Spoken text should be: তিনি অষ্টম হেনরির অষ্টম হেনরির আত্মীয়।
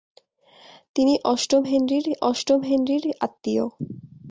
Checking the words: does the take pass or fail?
pass